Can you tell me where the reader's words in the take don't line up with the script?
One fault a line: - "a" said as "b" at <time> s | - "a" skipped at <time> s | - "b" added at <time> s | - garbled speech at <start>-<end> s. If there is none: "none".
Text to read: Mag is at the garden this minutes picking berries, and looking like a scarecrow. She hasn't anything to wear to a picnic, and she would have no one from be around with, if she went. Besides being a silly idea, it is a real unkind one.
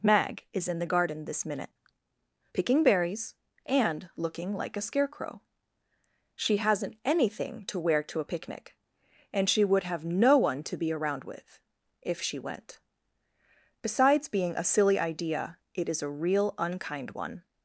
- "at" said as "in" at 0.7 s
- "minutes" said as "minute" at 1.4 s
- "from" said as "to" at 10.6 s